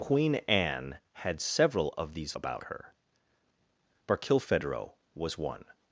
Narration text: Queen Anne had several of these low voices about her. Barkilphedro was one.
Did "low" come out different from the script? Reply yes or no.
yes